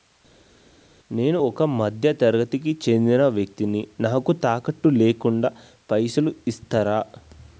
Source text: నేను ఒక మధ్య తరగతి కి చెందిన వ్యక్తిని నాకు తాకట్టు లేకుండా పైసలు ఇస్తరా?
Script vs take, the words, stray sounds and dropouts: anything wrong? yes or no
no